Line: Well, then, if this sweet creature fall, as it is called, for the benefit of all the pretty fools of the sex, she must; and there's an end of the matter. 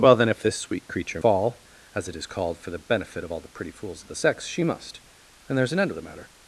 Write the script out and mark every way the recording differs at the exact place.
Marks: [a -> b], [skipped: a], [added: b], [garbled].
Well, then, if this sweet creature fall, as it is called, for the benefit of all the pretty fools of the sex, she must; and there's an end of the matter.